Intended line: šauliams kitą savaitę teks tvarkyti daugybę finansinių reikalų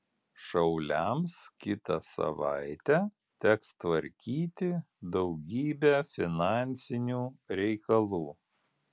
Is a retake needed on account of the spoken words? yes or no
no